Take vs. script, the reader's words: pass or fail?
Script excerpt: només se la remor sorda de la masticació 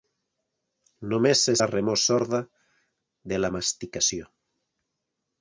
pass